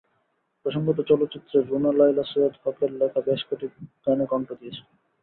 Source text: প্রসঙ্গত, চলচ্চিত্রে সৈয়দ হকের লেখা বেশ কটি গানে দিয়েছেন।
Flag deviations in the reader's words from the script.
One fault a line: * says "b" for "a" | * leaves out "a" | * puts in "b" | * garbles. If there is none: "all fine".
* puts in "রুনা লায়লা"
* puts in "কণ্ঠ"